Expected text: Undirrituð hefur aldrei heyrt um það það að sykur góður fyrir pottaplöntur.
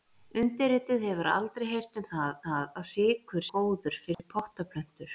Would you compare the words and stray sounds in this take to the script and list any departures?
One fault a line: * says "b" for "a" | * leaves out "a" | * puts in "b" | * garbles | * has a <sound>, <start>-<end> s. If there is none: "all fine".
* has a dropout, 4.1-4.2 s